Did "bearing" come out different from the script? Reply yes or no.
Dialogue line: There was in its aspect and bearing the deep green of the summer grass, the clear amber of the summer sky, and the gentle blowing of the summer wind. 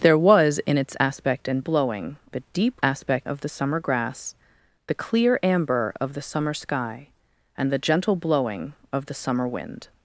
yes